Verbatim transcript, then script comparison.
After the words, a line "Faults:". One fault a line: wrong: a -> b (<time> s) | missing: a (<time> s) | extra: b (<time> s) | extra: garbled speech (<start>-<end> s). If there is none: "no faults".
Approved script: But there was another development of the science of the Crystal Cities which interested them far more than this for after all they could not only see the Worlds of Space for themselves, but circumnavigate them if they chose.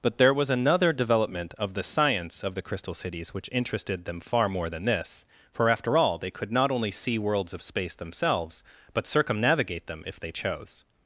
But there was another development of the science of the Crystal Cities which interested them far more than this for after all they could not only see Worlds of Space themselves, but circumnavigate them if they chose.
Faults:
missing: the (7.2 s)
missing: for (8.0 s)